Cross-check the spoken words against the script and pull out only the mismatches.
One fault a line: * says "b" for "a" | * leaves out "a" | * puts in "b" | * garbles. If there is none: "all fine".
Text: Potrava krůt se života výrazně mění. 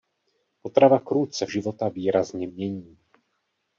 all fine